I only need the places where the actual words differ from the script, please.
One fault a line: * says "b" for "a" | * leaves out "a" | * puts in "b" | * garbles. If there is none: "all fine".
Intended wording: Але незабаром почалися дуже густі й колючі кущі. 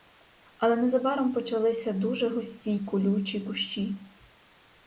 all fine